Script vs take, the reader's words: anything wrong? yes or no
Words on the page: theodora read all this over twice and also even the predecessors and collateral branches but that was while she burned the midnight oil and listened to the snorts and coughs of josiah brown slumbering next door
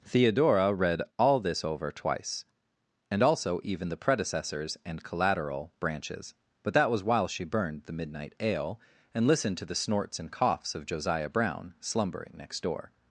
yes